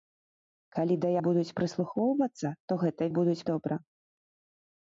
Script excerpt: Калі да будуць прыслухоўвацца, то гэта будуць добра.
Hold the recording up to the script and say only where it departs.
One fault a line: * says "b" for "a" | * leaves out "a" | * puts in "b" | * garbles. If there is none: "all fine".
all fine